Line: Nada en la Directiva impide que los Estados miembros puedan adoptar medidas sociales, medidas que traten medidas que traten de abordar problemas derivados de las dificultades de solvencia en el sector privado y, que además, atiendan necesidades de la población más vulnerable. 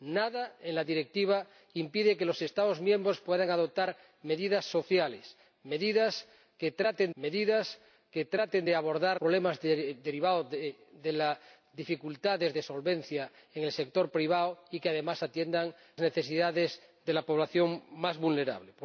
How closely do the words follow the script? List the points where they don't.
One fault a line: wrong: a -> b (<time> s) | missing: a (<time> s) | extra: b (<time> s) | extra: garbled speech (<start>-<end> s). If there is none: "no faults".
no faults